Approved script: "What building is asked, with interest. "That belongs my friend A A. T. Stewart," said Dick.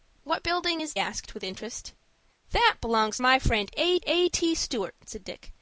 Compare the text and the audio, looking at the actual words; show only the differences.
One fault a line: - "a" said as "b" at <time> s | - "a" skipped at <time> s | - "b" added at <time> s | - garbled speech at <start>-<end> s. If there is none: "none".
none